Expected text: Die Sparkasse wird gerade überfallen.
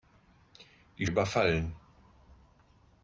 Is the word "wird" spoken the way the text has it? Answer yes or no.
no